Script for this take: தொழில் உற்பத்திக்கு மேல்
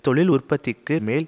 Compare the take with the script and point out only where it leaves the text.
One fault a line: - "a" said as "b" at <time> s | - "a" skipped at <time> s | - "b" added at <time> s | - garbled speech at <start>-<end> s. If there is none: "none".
none